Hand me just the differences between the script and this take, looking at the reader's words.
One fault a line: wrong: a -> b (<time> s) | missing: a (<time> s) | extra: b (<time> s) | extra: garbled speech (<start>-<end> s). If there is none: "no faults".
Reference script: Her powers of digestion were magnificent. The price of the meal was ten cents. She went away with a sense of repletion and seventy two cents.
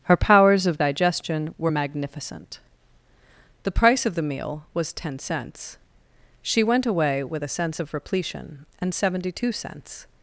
no faults